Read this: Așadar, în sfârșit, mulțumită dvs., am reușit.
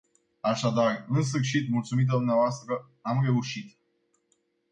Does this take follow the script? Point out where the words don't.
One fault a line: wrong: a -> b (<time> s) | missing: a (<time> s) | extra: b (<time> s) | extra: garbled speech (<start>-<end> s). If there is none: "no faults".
no faults